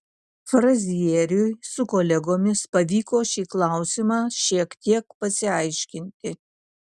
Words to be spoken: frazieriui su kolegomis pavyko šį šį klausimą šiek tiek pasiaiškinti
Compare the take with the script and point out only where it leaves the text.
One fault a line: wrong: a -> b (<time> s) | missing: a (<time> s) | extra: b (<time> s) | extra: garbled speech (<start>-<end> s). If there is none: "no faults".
missing: šį (3.4 s)